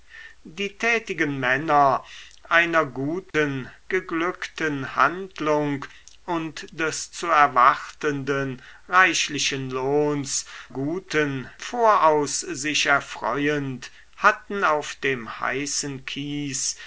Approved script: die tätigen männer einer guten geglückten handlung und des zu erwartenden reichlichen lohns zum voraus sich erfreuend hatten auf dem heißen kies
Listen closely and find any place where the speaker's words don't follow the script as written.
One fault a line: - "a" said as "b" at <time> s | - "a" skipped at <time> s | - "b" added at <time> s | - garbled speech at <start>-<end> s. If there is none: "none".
- "zum" said as "guten" at 10.7 s